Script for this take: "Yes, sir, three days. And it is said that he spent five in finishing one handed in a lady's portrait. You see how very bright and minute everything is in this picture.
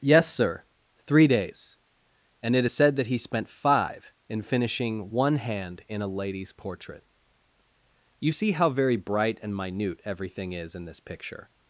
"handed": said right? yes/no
no